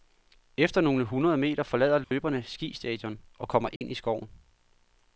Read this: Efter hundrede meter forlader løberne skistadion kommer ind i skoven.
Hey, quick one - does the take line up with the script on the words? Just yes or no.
no